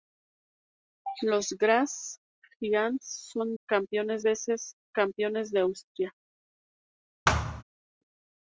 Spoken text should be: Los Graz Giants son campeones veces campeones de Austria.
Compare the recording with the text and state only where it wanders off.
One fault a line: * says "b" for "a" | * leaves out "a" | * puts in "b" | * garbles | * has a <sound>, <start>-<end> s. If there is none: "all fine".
* has a thud, 7.3-7.6 s